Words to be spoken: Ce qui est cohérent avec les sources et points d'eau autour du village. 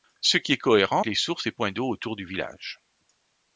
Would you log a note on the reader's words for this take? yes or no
yes